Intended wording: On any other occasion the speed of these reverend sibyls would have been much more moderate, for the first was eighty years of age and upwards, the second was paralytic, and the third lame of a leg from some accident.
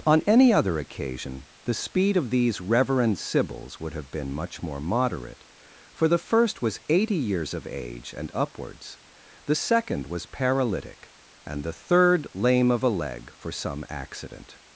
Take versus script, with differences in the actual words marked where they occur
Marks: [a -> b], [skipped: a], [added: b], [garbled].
On any other occasion the speed of these reverend sibyls would have been much more moderate, for the first was eighty years of age and upwards, the second was paralytic, and the third lame of a leg [from -> for] some accident.